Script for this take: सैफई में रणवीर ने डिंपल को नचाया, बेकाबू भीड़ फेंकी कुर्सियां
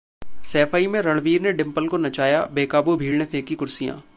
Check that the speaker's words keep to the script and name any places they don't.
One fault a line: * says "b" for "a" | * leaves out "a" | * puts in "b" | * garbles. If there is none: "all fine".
* puts in "ने"